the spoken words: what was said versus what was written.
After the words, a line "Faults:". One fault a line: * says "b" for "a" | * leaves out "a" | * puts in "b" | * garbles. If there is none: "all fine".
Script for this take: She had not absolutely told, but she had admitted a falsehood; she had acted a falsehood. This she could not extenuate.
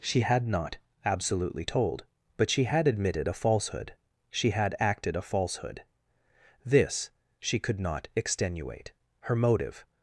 She had not absolutely told, but she had admitted a falsehood; she had acted a falsehood. This she could not extenuate. Her motive
Faults:
* puts in "Her motive"